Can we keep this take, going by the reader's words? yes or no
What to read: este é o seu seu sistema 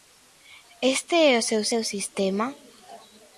yes